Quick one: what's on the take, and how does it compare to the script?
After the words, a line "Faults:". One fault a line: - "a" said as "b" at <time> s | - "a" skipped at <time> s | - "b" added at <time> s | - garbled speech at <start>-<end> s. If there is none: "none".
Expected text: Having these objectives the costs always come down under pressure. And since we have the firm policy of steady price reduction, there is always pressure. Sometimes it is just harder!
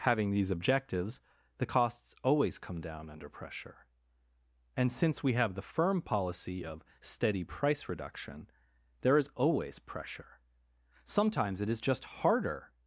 Having these objectives the costs always come down under pressure. And since we have the firm policy of steady price reduction, there is always pressure. Sometimes it is just harder!
Faults:
none